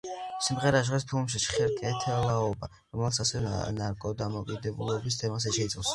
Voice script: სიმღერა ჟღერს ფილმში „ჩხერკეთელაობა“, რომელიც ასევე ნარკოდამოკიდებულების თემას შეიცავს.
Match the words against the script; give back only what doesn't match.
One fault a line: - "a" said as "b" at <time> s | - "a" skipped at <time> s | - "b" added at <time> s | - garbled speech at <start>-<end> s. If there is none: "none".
none